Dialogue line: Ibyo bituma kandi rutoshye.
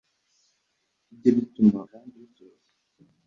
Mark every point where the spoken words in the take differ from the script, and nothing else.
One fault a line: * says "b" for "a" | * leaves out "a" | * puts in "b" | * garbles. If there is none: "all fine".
all fine